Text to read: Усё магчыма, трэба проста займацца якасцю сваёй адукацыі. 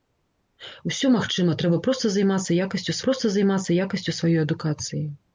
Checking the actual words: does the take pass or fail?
fail